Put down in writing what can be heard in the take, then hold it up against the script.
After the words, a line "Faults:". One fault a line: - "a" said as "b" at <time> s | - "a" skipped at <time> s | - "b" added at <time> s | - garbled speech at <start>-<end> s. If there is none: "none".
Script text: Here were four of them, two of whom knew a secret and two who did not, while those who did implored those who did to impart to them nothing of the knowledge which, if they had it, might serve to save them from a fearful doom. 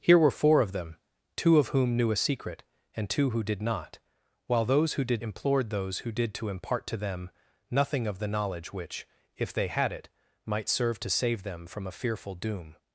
Here were four of them, two of whom knew a secret and two who did not, while those who did implored those who did to impart to them nothing of the knowledge which, if they had it, might serve to save them from a fearful doom.
Faults:
none